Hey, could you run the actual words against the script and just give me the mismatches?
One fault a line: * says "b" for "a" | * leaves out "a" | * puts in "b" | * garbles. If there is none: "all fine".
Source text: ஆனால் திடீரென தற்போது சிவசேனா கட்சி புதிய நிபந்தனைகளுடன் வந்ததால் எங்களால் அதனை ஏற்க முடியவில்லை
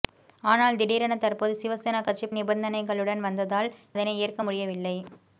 * leaves out "புதிய"
* leaves out "எங்களால்"